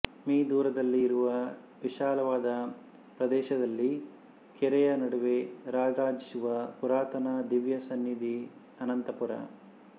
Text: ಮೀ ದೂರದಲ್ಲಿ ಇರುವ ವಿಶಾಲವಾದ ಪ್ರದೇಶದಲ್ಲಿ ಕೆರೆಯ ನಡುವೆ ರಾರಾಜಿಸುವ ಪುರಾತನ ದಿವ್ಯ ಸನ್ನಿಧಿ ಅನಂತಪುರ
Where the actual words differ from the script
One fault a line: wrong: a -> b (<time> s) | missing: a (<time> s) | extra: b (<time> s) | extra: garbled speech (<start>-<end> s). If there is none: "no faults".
no faults